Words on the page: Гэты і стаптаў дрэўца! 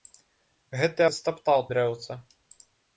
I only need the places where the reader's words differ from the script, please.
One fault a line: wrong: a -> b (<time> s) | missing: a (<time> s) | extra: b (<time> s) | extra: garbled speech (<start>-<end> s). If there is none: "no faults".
no faults